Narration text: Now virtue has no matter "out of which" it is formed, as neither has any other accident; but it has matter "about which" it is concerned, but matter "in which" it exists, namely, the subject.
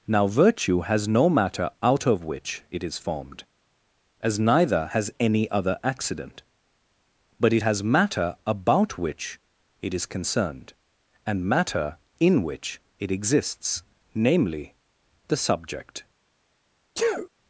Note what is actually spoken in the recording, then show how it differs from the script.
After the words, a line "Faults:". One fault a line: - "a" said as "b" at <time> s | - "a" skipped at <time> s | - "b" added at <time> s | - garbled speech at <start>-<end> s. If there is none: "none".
Now virtue has no matter "out of which" it is formed, as neither has any other accident; but it has matter "about which" it is concerned, and matter "in which" it exists, namely, the subject.
Faults:
- "but" said as "and" at 11.2 s